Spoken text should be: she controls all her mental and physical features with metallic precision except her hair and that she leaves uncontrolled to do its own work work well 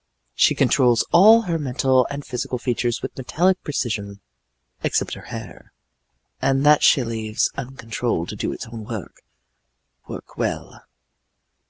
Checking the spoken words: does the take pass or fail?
pass